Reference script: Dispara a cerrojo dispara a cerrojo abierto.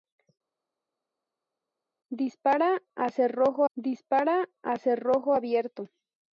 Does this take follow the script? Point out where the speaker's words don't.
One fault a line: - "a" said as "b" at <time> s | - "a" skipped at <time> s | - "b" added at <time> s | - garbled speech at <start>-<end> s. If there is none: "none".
none